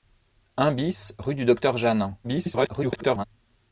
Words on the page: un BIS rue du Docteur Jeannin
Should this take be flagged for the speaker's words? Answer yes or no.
yes